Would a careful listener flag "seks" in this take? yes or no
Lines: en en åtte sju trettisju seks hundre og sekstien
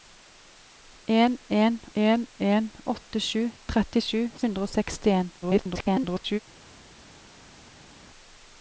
yes